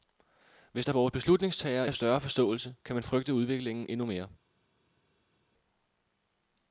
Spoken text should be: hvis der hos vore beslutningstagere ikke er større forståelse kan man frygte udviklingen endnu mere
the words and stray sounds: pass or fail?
fail